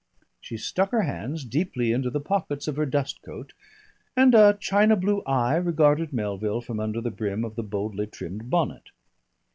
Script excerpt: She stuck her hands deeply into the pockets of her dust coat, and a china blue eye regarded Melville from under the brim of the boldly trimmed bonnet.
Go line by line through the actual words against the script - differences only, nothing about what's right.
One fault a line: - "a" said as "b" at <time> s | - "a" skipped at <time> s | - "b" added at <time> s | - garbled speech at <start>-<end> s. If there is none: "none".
none